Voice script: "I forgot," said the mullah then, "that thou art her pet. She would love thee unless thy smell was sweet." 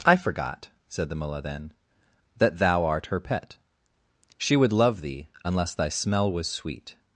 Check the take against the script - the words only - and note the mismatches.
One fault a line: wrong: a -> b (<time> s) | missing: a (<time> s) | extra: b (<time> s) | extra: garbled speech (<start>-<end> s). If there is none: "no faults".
no faults